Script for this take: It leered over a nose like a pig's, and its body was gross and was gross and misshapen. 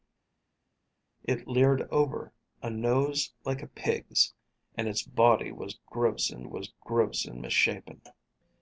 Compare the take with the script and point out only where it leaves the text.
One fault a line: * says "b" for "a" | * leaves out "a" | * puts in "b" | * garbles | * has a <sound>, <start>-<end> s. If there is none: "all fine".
all fine